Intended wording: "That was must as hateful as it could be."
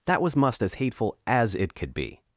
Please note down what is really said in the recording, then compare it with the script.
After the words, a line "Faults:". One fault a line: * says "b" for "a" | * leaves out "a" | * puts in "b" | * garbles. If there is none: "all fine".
"That was must as hateful as it could be."
Faults:
all fine